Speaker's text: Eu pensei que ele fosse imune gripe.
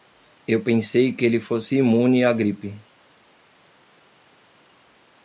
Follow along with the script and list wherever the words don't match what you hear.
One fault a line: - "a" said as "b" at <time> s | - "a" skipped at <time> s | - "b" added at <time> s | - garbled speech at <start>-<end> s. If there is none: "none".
- "à" added at 2.2 s